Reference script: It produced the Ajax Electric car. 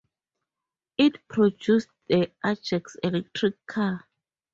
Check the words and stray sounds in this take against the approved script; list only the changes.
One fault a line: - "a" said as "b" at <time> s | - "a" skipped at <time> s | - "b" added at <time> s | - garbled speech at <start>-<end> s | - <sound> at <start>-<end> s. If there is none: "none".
none